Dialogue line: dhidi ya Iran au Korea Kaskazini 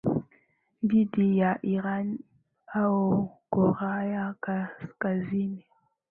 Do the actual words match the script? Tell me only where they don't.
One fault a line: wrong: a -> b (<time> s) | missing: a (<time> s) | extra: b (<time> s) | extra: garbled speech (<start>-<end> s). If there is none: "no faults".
no faults